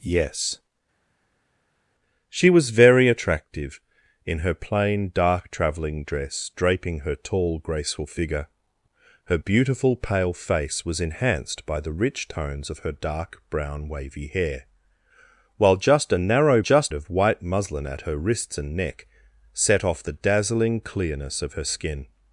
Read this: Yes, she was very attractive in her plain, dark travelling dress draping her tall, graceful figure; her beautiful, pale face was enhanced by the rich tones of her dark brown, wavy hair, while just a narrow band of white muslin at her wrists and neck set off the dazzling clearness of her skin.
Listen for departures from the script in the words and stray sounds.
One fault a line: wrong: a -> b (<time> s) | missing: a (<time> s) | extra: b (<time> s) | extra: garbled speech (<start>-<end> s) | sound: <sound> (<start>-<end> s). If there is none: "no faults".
wrong: band -> just (16.6 s)